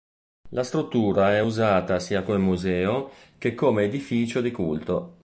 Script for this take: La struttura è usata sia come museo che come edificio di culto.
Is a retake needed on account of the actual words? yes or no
no